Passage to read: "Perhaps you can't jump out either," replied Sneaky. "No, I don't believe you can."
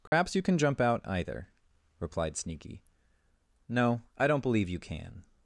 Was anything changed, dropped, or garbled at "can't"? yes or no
yes